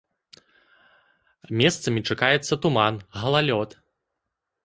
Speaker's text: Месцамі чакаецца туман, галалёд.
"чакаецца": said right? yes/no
yes